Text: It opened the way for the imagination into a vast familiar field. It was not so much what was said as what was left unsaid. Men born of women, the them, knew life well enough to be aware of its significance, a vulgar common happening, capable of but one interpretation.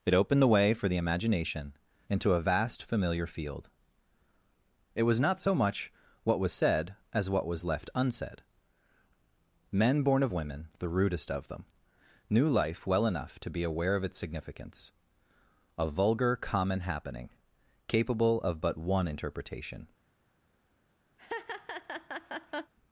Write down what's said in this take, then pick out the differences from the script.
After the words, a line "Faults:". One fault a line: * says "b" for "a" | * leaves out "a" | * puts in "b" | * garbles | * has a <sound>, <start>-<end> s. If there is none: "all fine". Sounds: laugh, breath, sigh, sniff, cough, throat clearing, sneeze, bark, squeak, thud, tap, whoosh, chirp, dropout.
It opened the way for the imagination into a vast familiar field. It was not so much what was said as what was left unsaid. Men born of women, the rudest of them, knew life well enough to be aware of its significance, a vulgar common happening, capable of but one interpretation.
Faults:
* puts in "rudest of"
* has a laugh, 21.2-22.7 s